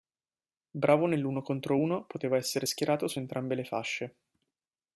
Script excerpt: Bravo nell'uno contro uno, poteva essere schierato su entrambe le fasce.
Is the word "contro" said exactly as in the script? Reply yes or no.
yes